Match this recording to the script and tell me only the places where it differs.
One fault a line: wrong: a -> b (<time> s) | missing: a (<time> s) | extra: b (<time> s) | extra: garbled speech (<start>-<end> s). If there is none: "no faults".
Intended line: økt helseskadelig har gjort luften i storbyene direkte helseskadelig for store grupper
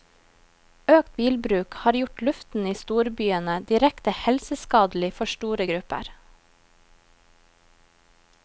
wrong: helseskadelig -> bilbruk (1.2 s)